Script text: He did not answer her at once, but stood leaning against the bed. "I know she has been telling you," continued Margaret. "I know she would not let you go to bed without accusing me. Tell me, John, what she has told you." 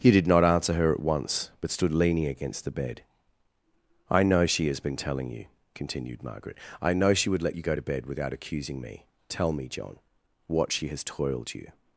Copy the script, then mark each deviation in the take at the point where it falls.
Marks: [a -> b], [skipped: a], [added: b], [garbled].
He did not answer her at once, but stood leaning against the bed. "I know she has been telling you," continued Margaret. "I know she would [skipped: not] let you go to bed without accusing me. Tell me, John, what she has [told -> toiled] you."